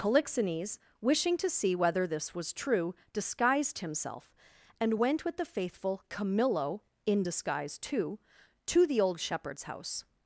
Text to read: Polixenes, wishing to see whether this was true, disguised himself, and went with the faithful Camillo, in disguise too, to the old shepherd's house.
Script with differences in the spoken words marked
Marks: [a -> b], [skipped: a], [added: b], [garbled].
Polixenes, wishing to see whether this was true, disguised himself, and went with the faithful Camillo, in disguise too, to the old shepherd's house.